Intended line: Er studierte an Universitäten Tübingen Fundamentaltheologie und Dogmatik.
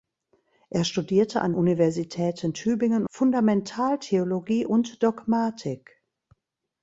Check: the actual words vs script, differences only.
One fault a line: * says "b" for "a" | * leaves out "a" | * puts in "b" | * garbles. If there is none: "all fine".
all fine